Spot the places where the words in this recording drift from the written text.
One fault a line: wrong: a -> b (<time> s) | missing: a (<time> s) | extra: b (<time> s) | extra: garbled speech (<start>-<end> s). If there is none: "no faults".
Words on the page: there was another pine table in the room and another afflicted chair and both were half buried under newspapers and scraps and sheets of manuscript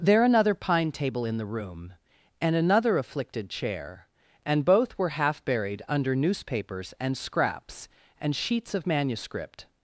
missing: was (0.2 s)